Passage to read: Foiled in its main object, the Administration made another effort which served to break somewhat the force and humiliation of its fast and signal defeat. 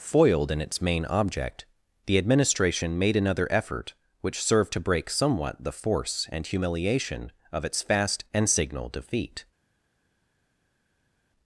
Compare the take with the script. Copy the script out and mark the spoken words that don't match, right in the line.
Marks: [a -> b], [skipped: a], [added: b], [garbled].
Foiled in its main object, the Administration made another effort which served to break somewhat the force and humiliation of its fast and signal defeat.